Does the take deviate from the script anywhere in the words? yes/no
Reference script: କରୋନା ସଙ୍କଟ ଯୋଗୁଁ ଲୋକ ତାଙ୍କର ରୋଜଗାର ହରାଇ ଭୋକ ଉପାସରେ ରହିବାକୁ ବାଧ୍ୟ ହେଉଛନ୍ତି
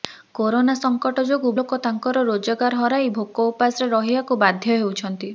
no